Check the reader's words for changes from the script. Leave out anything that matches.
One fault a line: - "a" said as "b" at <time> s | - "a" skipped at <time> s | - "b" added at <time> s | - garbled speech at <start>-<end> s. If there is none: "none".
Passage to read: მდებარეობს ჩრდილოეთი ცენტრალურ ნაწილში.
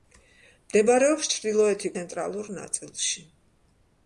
none